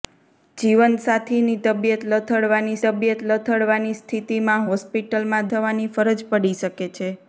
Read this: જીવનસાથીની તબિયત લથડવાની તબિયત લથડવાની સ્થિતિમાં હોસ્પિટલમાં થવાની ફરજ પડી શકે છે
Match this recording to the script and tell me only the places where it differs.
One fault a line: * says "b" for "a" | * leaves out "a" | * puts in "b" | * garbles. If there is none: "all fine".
all fine